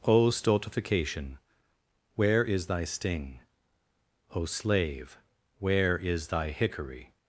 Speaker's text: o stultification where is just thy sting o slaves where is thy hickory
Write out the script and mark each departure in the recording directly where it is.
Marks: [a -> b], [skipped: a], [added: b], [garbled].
o stultification where is [skipped: just] thy sting o [slaves -> slave] where is thy hickory